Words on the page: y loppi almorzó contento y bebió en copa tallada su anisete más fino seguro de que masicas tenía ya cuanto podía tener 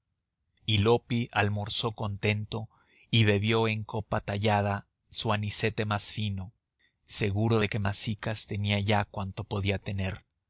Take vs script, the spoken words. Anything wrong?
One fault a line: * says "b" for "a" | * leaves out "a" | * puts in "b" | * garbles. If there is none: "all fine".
all fine